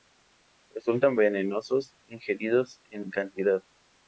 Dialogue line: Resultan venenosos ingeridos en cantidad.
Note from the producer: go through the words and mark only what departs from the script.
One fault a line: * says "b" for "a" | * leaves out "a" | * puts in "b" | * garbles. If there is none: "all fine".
all fine